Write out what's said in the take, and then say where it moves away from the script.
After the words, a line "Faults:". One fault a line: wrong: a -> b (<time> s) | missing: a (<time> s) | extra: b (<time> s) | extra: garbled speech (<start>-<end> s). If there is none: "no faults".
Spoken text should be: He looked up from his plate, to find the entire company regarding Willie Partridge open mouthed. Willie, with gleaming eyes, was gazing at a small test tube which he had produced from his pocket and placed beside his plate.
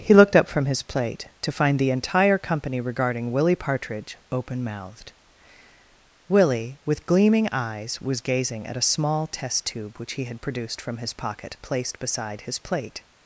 He looked up from his plate, to find the entire company regarding Willie Partridge open mouthed. Willie, with gleaming eyes, was gazing at a small test tube which he had produced from his pocket placed beside his plate.
Faults:
missing: and (11.6 s)